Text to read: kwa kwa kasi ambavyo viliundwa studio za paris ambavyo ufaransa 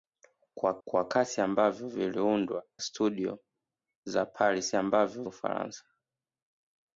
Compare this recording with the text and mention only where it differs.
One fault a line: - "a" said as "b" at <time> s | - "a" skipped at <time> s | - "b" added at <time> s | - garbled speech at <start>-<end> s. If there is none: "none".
none